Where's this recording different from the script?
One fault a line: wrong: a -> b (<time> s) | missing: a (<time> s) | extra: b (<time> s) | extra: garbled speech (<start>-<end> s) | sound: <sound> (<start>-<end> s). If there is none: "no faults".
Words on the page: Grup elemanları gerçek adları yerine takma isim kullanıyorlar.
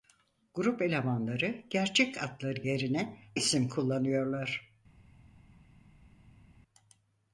missing: takma (3.2 s)